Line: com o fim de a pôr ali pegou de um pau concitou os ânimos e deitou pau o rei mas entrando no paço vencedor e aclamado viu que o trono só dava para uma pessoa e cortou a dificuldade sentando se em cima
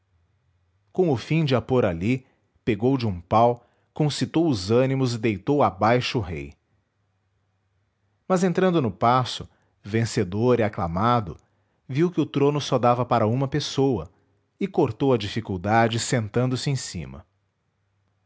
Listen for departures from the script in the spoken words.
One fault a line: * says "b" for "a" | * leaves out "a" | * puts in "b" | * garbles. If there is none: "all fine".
* says "abaixo" for "pau"